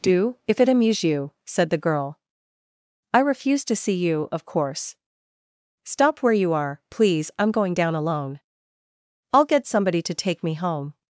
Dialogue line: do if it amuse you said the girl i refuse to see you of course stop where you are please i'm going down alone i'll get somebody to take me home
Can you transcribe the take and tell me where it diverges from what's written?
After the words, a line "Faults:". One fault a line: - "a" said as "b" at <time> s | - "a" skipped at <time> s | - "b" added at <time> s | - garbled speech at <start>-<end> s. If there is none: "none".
do if it amuse you said the girl i refuse to see you of course stop where you are please i'm going down alone i'll get somebody to take me home
Faults:
none